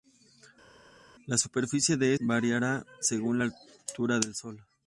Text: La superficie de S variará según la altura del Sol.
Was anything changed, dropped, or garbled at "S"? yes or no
yes